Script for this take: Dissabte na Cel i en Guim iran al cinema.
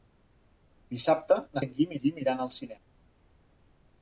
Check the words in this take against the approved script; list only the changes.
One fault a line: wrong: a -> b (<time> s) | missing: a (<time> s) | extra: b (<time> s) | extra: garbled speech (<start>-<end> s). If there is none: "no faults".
missing: Cel (1.6 s)
extra: Guim (2.0 s)